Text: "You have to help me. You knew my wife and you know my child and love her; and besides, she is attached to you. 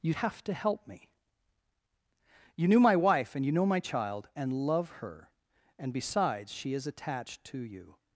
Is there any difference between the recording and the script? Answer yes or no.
no